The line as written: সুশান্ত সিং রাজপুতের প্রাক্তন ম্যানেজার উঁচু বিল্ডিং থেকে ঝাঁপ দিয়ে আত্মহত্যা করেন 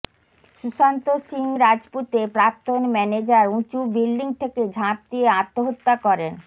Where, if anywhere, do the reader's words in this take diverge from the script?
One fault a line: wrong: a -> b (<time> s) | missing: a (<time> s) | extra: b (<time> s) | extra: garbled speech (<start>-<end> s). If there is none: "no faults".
no faults